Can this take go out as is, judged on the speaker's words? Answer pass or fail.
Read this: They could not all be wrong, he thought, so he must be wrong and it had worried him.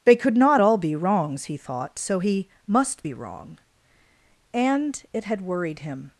fail